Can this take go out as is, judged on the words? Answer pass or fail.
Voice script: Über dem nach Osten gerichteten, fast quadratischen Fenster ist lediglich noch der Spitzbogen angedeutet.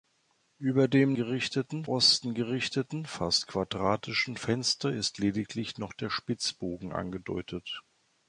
fail